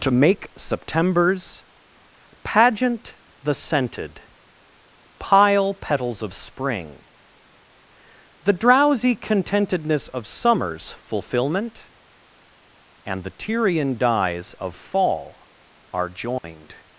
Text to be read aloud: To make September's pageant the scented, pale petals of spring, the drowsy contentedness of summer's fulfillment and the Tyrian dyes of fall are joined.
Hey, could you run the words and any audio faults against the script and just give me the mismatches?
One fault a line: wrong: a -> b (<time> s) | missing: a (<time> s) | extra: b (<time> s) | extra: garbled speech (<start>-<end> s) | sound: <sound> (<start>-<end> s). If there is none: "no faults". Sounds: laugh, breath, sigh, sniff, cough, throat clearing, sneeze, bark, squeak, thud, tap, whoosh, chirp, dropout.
wrong: pale -> pile (5.2 s)
sound: dropout (16.4-16.4 s)